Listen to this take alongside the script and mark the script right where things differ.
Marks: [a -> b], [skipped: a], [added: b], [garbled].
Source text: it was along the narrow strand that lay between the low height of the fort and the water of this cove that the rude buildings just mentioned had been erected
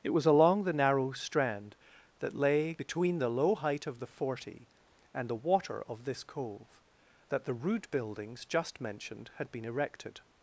it was along the narrow strand that lay between the low height of the [fort -> forty] and the water of this cove that the rude buildings just mentioned had been erected